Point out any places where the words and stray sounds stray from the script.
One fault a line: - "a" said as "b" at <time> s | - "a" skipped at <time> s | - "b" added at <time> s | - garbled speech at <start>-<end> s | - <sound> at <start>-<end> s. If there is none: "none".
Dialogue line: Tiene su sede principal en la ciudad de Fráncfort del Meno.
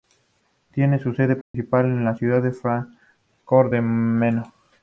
- dropout at 1.4-1.5 s